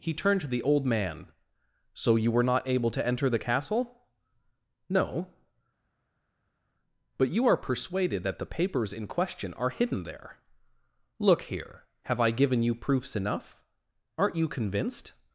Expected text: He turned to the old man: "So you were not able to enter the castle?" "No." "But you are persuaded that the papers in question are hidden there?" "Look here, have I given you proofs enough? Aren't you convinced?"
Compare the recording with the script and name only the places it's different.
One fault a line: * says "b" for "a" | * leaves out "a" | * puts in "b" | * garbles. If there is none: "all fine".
all fine